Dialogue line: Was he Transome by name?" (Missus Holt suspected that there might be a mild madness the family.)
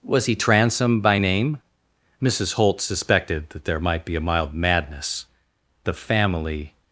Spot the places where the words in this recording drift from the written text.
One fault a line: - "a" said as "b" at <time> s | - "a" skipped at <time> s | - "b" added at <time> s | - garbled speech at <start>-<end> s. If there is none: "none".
none